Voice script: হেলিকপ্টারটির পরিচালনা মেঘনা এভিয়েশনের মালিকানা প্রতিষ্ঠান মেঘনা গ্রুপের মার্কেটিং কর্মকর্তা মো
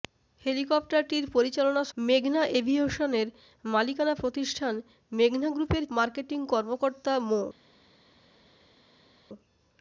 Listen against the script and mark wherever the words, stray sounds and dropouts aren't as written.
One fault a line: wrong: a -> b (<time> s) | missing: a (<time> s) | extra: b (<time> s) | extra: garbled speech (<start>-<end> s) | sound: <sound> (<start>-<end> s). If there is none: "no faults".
no faults